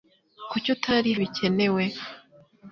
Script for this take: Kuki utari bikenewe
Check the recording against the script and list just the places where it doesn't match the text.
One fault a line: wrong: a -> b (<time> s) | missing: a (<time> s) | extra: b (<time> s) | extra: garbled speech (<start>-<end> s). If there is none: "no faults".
no faults